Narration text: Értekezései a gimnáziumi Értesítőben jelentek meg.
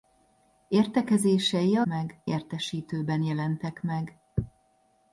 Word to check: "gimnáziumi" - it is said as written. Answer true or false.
false